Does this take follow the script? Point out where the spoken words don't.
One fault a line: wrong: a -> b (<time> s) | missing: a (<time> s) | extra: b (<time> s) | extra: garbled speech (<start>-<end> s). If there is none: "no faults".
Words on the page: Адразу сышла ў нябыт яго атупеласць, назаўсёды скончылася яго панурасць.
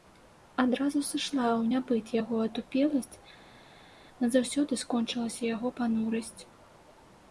no faults